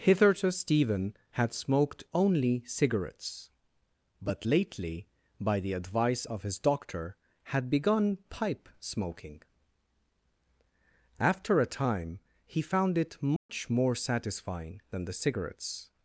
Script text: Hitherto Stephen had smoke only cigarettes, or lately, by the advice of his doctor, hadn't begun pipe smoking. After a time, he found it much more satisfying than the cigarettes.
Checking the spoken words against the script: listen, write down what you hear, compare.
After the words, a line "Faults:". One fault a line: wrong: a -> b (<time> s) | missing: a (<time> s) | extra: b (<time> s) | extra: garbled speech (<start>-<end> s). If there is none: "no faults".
Hitherto Stephen had smoked only cigarettes, but lately, by the advice of his doctor, had begun pipe smoking. After a time, he found it much more satisfying than the cigarettes.
Faults:
wrong: smoke -> smoked (1.5 s)
wrong: or -> but (4.2 s)
wrong: hadn't -> had (7.4 s)